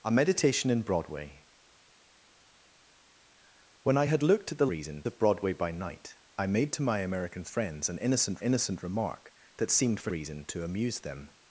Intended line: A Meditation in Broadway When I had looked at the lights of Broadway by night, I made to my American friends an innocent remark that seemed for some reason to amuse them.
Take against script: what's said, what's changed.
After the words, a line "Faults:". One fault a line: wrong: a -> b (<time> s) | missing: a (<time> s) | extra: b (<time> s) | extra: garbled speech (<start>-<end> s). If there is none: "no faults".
A Meditation in Broadway When I had looked at the reason of Broadway by night, I made to my American friends an innocent innocent remark that seemed for reason to amuse them.
Faults:
wrong: lights -> reason (4.6 s)
extra: innocent (8.4 s)
missing: some (10.1 s)